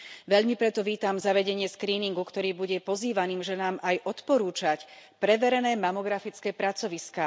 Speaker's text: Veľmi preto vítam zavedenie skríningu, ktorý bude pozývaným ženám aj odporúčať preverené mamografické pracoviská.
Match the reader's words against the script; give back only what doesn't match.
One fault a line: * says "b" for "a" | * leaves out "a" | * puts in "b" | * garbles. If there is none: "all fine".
all fine